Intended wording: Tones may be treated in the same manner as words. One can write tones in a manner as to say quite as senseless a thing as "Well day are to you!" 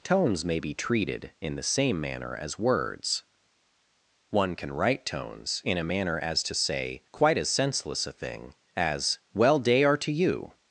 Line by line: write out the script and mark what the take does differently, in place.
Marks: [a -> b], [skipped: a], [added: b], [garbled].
Tones may be treated in the same manner as words. One can write tones in a manner as to say quite as senseless a thing as "Well day are to you!"